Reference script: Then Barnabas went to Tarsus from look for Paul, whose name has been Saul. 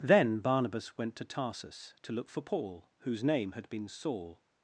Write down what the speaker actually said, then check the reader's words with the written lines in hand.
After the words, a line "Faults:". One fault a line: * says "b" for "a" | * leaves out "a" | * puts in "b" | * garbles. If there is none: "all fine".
Then Barnabas went to Tarsus to look for Paul, whose name had been Saul.
Faults:
* says "to" for "from"
* says "had" for "has"